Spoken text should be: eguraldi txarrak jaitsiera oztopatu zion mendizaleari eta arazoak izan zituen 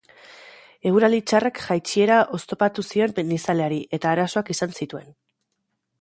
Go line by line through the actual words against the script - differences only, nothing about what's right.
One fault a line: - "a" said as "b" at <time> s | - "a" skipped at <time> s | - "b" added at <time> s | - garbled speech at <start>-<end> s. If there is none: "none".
none